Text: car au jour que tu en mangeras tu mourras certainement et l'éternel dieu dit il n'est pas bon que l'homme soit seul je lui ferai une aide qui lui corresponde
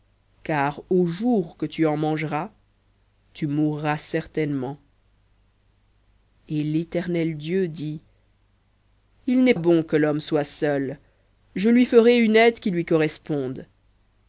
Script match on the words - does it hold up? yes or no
no